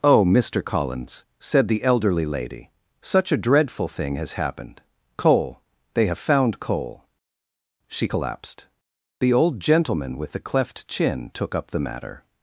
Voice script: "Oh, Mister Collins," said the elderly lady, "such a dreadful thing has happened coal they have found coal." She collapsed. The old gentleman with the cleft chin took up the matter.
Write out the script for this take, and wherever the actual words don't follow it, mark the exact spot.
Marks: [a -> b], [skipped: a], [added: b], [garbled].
"Oh, Mister Collins," said the elderly lady, "such a dreadful thing has happened coal they have found coal." She collapsed. The old gentleman with the cleft chin took up the matter.